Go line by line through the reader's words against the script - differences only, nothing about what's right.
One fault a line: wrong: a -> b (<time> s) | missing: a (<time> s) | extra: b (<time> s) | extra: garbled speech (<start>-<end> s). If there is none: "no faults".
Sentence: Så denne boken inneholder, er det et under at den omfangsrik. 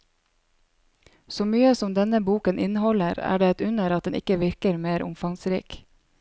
extra: mye som (1.5 s)
extra: ikke virker mer (4.2 s)